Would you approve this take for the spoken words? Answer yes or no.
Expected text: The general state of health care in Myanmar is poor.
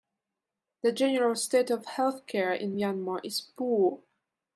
yes